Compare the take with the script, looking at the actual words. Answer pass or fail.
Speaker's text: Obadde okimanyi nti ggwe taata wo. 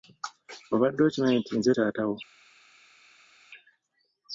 fail